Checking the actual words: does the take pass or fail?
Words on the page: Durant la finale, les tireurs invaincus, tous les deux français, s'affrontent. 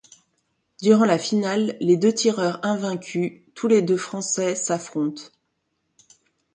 fail